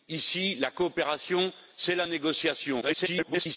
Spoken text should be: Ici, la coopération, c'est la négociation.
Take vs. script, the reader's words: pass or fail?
fail